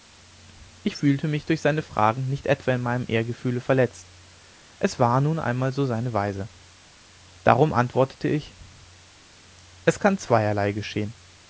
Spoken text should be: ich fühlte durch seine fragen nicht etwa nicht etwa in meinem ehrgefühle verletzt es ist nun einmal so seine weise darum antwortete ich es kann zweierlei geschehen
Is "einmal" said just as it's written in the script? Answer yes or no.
yes